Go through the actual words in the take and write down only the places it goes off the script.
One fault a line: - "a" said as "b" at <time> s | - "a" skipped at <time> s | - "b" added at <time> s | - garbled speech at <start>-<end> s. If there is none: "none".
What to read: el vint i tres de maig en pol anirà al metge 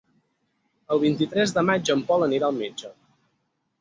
none